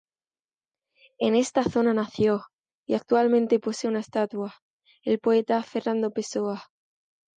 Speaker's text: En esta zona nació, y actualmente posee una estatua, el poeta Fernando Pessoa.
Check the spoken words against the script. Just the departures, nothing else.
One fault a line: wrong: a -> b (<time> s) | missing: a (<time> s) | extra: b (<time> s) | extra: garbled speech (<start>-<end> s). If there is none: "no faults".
no faults